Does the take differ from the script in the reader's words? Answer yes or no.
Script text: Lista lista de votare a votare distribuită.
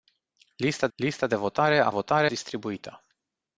no